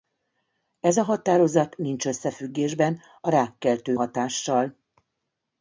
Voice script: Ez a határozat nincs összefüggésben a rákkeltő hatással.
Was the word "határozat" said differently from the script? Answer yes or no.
no